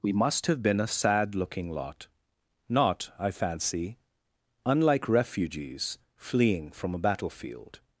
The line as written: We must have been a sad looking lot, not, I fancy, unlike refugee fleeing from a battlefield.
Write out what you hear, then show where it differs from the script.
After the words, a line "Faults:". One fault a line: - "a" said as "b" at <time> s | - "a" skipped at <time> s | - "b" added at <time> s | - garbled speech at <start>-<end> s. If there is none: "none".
We must have been a sad looking lot, not, I fancy, unlike refugees fleeing from a battlefield.
Faults:
- "refugee" said as "refugees" at 5.1 s